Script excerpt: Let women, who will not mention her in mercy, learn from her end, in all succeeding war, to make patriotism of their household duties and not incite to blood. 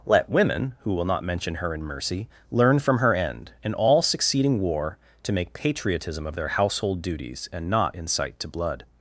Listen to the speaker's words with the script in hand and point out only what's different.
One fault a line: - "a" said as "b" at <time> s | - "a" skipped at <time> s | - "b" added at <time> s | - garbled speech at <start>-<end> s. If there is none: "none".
none